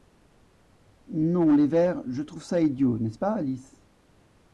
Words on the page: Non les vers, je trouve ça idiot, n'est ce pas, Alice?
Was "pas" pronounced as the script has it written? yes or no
yes